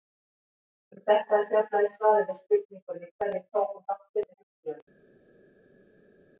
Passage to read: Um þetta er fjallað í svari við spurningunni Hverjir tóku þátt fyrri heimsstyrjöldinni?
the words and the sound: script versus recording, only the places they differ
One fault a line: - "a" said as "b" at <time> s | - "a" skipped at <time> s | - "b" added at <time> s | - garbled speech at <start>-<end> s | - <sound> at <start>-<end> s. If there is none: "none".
none